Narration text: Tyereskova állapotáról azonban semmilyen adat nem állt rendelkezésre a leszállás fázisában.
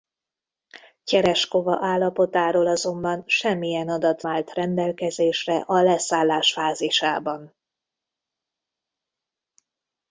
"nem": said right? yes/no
no